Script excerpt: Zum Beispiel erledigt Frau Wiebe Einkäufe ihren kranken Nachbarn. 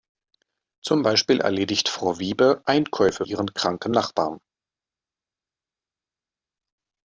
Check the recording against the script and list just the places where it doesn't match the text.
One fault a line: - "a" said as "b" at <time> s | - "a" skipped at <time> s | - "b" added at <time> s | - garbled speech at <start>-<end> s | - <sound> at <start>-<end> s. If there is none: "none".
none